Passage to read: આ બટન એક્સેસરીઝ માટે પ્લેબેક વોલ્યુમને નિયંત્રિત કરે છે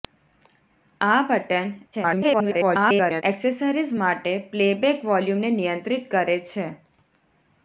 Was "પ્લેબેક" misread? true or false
false